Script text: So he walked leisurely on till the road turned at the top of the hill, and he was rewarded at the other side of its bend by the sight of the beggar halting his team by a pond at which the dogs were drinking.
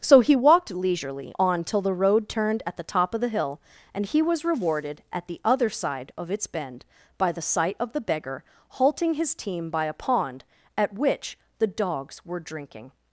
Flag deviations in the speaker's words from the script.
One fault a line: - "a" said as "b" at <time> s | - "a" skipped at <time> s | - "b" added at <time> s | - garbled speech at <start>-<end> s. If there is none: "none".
none